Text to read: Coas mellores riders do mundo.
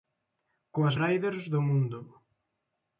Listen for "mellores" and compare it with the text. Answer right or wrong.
wrong